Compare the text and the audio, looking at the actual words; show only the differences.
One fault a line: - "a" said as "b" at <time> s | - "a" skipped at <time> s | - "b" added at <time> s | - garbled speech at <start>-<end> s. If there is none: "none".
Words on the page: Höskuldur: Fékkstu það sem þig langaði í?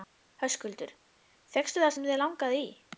none